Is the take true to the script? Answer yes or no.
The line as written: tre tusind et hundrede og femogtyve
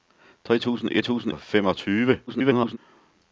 no